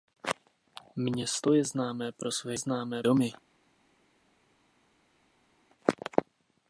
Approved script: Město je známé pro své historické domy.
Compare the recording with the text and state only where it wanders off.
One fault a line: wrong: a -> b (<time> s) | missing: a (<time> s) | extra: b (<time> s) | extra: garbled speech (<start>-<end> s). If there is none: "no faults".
wrong: historické -> známé (2.5 s)